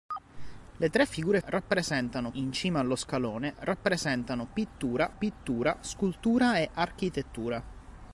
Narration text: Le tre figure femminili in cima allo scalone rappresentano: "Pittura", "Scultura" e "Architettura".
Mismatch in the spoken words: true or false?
true